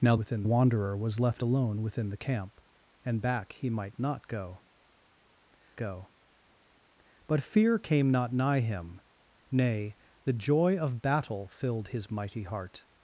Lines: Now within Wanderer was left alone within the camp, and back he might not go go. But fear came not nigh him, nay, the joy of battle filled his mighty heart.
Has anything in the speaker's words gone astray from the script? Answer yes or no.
no